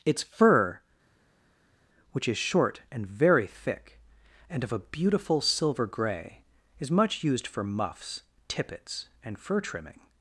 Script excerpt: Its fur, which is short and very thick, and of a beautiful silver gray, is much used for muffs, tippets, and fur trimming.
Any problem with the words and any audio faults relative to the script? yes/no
no